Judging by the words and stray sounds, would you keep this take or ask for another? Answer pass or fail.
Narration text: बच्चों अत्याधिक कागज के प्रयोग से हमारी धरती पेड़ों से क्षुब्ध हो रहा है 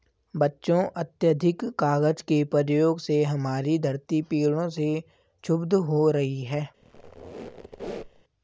fail